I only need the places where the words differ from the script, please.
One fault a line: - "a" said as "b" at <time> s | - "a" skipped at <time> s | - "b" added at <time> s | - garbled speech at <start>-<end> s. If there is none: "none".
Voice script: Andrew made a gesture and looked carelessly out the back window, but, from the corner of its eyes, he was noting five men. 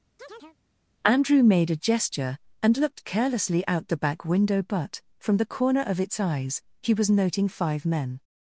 none